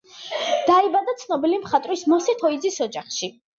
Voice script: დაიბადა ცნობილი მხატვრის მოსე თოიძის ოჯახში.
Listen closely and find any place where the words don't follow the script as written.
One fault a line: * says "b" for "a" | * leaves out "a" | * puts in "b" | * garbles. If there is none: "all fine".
all fine